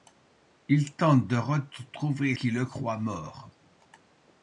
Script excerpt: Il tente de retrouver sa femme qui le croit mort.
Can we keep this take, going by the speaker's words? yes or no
no